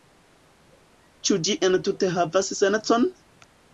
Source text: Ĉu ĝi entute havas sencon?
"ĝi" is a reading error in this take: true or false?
false